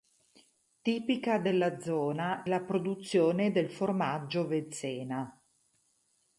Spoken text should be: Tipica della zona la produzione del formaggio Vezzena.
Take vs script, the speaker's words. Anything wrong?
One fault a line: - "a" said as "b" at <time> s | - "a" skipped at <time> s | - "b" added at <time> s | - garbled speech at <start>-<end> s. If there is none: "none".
none